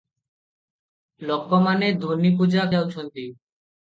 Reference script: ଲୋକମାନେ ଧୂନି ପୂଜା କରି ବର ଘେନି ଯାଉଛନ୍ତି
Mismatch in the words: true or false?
true